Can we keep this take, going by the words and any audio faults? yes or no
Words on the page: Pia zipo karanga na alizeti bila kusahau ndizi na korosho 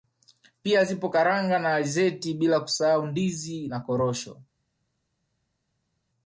yes